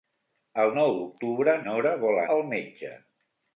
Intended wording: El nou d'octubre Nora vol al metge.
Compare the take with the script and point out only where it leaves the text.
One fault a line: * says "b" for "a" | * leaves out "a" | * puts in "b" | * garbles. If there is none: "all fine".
all fine